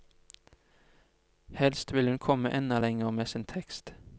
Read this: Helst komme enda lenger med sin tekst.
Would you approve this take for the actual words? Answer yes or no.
no